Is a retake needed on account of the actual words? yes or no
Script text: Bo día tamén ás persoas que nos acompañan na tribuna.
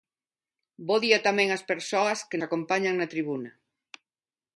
yes